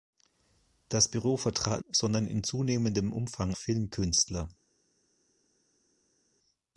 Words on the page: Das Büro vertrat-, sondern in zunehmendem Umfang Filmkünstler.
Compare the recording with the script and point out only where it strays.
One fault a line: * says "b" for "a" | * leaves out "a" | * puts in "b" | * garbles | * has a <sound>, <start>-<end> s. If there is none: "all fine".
all fine